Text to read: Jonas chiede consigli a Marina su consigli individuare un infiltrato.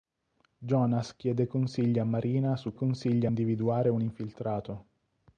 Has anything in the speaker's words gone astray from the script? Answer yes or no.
no